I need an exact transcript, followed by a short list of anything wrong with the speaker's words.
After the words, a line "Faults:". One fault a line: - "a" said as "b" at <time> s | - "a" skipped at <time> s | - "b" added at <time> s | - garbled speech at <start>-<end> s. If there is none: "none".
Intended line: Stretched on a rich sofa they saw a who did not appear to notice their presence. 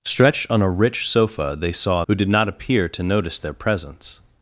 Stretched on a rich sofa they saw a who did not appear to notice their presence.
Faults:
none